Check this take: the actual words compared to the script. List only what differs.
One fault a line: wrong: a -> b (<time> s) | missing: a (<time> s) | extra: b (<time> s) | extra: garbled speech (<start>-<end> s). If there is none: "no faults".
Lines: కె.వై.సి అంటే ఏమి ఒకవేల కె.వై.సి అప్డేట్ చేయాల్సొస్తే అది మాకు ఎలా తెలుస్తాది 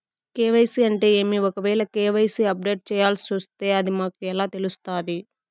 no faults